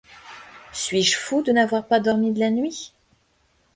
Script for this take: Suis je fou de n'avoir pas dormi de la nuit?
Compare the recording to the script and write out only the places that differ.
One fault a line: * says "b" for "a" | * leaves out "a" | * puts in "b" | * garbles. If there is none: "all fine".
all fine